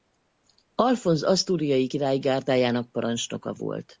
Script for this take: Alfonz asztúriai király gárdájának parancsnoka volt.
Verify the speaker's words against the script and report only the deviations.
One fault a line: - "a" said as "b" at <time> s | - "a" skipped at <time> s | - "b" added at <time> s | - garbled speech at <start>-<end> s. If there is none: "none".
none